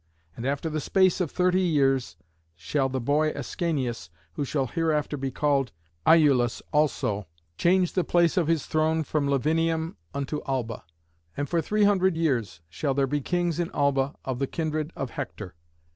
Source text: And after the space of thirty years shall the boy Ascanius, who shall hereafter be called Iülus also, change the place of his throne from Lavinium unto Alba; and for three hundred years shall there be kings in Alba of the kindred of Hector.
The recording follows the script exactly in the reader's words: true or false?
true